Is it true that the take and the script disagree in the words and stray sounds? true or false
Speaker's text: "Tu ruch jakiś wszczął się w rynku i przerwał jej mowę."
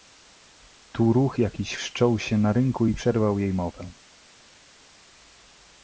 true